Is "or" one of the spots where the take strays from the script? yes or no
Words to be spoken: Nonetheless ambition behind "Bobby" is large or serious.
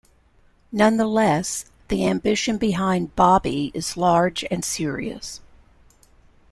yes